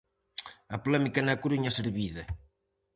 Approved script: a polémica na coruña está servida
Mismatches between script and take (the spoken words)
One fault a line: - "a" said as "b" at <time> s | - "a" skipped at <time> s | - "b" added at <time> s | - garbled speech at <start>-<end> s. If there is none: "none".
- "está" skipped at 1.7 s